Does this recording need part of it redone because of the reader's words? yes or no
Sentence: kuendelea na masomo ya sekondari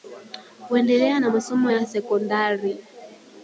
no